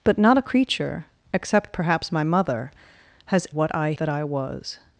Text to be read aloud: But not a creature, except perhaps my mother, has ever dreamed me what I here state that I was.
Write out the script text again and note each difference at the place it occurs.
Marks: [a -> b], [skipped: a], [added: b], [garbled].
But not a creature, except perhaps my mother, has [skipped: ever dreamed me] what I [skipped: here state] that I was.